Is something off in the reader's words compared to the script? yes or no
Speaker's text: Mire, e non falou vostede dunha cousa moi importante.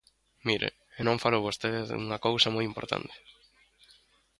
no